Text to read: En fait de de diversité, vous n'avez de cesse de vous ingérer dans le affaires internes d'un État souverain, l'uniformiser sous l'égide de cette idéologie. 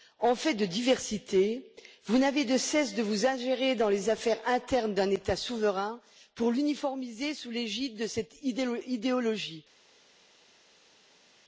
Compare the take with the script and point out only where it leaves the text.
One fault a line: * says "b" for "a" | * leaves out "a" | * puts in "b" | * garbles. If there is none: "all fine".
* leaves out "de"
* says "les" for "le"
* puts in "pour"